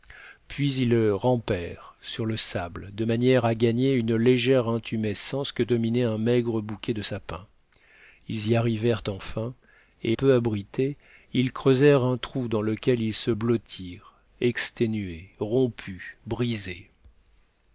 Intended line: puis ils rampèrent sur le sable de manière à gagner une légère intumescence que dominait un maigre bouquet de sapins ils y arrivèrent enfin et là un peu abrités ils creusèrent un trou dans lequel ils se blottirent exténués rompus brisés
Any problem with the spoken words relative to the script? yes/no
yes